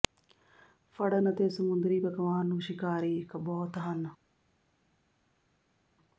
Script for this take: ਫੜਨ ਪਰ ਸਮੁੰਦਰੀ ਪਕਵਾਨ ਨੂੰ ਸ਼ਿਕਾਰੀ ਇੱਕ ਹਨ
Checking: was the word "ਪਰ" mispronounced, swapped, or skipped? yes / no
yes